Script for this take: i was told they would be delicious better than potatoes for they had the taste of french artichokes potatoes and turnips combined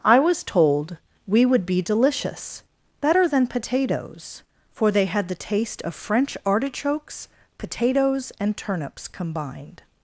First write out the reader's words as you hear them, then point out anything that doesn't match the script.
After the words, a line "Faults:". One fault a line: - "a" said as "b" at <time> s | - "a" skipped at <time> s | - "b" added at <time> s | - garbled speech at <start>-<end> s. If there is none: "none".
i was told we would be delicious better than potatoes for they had the taste of french artichokes potatoes and turnips combined
Faults:
- "they" said as "we" at 1.3 s